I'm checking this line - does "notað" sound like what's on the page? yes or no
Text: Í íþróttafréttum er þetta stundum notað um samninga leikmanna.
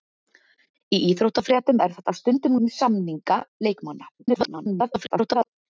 no